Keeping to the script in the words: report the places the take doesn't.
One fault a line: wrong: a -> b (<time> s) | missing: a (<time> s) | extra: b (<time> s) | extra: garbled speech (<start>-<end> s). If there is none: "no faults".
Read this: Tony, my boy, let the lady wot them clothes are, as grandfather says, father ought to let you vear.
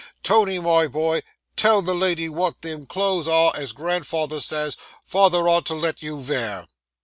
wrong: let -> tell (1.6 s)